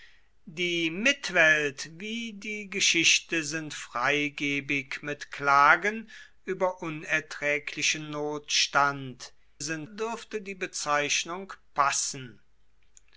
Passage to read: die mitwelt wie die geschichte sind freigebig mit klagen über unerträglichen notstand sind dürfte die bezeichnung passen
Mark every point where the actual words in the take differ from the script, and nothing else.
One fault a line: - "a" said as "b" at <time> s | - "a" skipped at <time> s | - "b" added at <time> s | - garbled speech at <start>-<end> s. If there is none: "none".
none